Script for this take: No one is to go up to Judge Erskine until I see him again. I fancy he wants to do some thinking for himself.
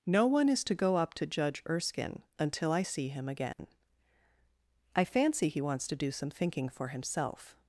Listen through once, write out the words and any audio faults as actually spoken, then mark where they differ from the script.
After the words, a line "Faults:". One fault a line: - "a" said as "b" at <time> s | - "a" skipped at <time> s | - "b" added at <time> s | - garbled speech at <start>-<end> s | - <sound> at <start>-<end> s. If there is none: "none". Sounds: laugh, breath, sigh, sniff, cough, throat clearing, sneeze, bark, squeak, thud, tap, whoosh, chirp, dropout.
No one is to go up to Judge Erskine until I see him again. I fancy he wants to do some thinking for himself.
Faults:
- dropout at 3.5-3.6 s